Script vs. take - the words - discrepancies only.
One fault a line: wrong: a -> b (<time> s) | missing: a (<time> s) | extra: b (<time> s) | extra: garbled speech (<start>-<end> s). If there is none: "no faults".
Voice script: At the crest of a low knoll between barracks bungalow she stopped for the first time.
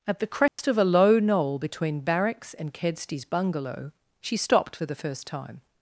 extra: and Kedsty's (2.5 s)